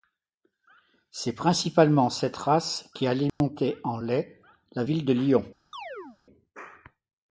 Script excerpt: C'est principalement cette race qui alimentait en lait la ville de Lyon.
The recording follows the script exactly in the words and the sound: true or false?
false